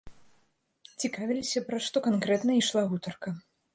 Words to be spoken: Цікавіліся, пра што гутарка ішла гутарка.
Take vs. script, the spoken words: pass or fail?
fail